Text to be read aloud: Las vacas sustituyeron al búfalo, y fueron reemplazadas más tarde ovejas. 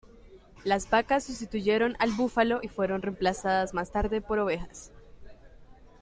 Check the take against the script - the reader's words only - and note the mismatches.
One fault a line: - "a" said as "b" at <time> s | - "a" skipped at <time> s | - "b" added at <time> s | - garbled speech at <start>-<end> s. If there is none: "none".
- "por" added at 4.2 s